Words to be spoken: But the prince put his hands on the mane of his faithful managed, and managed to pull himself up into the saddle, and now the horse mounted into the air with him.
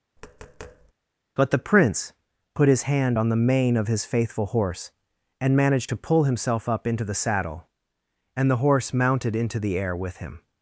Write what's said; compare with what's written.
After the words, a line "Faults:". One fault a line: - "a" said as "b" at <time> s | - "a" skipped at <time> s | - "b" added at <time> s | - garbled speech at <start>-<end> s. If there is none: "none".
But the prince put his hand on the mane of his faithful horse, and managed to pull himself up into the saddle, and the horse mounted into the air with him.
Faults:
- "hands" said as "hand" at 2.8 s
- "managed" said as "horse" at 4.5 s
- "now" skipped at 8.5 s